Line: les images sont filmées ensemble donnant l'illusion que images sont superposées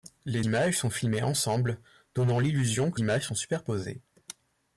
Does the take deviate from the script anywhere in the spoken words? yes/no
no